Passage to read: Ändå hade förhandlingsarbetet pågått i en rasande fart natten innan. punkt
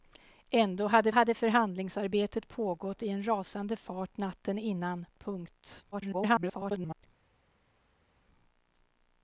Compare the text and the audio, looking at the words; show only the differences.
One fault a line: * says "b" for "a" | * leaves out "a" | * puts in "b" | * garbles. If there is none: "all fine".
* puts in "hade"
* garbles